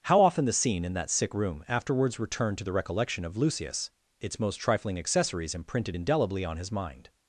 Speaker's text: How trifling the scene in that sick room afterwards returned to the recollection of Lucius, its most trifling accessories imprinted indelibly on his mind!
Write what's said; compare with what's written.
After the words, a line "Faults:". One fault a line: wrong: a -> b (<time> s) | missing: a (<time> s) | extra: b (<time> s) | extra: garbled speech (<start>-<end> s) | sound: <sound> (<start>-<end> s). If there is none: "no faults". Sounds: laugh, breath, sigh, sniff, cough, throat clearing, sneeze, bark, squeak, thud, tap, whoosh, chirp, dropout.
How often the scene in that sick room afterwards returned to the recollection of Lucius, its most trifling accessories imprinted indelibly on his mind!
Faults:
wrong: trifling -> often (0.2 s)